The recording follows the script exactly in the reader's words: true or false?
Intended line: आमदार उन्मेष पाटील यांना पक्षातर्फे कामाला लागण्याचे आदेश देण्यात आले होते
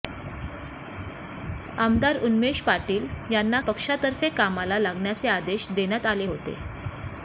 true